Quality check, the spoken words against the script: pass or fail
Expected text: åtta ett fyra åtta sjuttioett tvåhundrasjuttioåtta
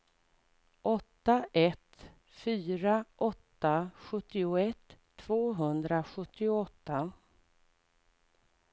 pass